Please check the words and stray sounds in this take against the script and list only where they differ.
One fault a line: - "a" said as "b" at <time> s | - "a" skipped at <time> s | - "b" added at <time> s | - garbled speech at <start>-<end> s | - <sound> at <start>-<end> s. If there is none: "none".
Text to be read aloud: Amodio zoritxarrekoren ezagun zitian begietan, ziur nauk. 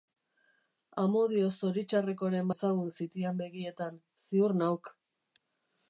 none